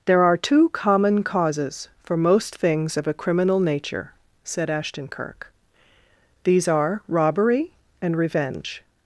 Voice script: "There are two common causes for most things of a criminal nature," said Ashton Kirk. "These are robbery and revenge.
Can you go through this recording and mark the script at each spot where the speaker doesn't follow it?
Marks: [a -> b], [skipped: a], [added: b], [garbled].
"There are two common causes for most things of a criminal nature," said Ashton Kirk. "These are robbery and revenge.